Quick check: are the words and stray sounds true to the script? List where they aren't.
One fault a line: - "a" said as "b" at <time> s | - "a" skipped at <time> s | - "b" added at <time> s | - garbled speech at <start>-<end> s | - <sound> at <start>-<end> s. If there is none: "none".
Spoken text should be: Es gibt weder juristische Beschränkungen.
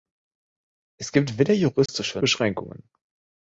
- dropout at 1.9-1.9 s